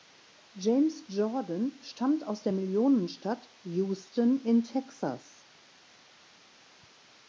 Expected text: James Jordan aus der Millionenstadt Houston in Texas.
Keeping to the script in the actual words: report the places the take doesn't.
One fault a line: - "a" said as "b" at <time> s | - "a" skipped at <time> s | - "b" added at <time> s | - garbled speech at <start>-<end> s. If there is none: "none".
- "stammt" added at 1.8 s